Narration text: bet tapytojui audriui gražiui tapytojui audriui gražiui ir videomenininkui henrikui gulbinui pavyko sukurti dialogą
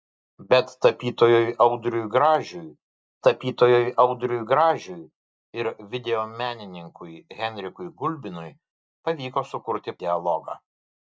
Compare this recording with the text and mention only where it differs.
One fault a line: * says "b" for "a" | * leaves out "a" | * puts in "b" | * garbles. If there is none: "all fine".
all fine